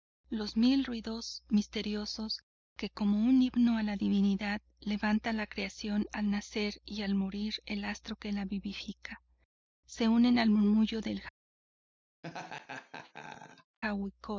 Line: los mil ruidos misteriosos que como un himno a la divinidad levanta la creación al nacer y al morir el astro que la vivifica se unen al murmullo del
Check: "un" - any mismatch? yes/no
no